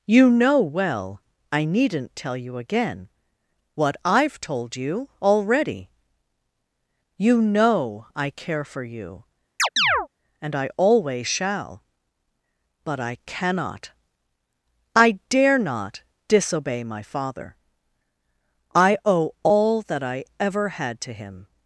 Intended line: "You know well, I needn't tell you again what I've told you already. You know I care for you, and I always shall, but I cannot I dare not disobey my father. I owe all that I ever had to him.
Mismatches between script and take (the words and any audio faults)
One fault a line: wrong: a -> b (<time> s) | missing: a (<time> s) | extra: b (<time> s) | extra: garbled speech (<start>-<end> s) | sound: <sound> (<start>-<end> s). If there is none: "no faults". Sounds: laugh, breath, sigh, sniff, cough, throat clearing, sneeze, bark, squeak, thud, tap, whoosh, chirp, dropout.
sound: chirp (9.6-10.1 s)